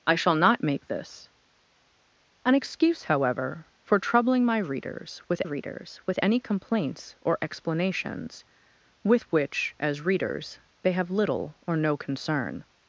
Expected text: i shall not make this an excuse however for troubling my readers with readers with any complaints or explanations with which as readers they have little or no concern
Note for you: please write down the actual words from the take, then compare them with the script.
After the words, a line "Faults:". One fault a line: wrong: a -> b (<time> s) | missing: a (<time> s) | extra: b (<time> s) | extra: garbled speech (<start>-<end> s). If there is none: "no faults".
i shall not make this an excuse however for troubling my readers with readers with any complaints or explanations with which as readers they have little or no concern
Faults:
no faults